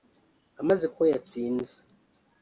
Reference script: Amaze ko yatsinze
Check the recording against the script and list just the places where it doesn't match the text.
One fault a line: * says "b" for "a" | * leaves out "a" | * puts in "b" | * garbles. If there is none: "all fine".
all fine